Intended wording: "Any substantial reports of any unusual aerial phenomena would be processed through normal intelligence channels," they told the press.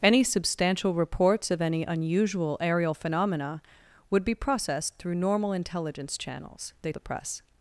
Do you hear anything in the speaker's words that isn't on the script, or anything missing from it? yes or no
yes